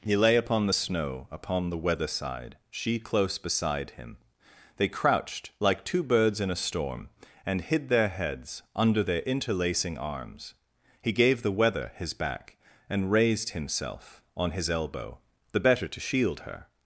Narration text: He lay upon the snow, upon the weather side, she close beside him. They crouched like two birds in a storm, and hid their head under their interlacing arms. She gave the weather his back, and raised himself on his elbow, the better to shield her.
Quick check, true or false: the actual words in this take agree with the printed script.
false